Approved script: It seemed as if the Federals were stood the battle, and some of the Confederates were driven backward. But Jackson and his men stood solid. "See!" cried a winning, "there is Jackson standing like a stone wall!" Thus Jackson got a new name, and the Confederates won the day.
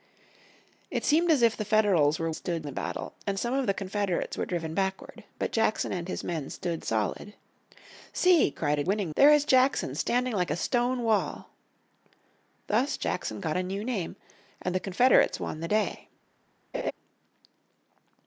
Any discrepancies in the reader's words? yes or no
no